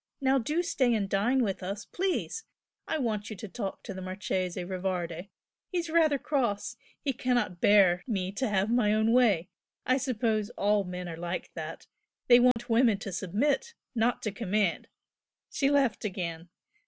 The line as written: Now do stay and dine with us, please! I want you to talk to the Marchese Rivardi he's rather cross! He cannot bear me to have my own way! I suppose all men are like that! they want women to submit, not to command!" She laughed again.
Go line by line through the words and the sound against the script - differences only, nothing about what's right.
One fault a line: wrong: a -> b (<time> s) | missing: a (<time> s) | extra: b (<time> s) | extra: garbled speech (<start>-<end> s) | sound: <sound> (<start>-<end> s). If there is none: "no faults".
sound: dropout (12.5-12.6 s)